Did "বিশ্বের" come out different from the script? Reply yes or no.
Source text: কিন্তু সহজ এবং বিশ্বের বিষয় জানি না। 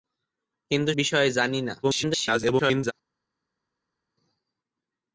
yes